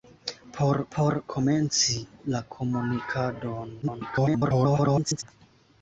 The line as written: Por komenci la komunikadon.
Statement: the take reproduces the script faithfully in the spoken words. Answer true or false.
false